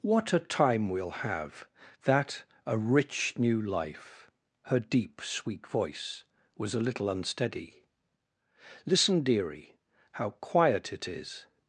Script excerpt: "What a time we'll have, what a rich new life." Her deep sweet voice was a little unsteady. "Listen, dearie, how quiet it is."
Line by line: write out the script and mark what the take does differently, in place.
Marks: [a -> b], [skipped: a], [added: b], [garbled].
"What a time we'll have, [what -> that] a rich new life." Her deep sweet voice was a little unsteady. "Listen, dearie, how quiet it is."